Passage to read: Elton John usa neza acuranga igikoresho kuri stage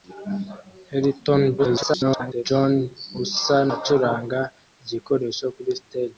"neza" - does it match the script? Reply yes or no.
no